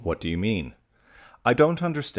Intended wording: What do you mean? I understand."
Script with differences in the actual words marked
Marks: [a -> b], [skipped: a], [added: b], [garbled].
What do you mean? I [added: don't] understand."